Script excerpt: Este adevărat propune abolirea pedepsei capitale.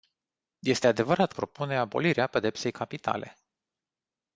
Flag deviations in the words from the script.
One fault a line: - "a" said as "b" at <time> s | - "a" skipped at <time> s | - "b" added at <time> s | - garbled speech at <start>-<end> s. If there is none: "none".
none